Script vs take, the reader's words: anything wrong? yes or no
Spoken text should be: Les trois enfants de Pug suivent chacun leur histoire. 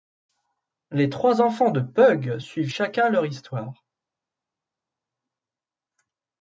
no